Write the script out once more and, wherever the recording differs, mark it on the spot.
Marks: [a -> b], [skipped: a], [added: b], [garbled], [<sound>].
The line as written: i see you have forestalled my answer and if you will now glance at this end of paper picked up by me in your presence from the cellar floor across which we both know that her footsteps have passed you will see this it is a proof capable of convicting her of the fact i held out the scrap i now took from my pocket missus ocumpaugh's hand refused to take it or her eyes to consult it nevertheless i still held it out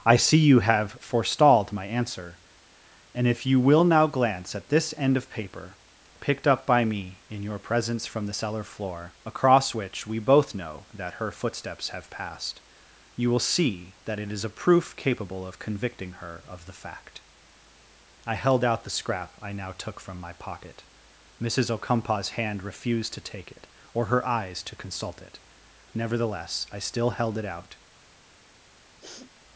i see you have forestalled my answer and if you will now glance at this end of paper picked up by me in your presence from the cellar floor across which we both know that her footsteps have passed you will see [this -> that] it is a proof capable of convicting her of the fact i held out the scrap i now took from my pocket missus ocumpaugh's hand refused to take it or her eyes to consult it nevertheless i still held it out [sniff]